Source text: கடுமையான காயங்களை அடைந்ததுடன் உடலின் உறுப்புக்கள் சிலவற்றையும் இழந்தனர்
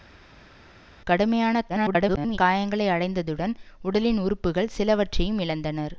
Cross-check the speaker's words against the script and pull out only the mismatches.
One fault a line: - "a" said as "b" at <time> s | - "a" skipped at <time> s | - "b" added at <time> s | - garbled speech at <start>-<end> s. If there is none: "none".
- garbled speech at 1.7-2.4 s